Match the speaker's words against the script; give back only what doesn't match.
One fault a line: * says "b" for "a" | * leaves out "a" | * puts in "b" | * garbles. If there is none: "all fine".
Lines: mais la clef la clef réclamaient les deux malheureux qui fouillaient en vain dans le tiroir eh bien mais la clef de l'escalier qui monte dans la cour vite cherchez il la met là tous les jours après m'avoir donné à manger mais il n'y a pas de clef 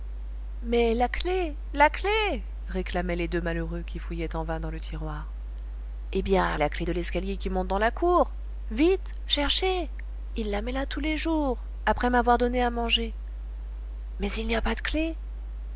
* leaves out "mais"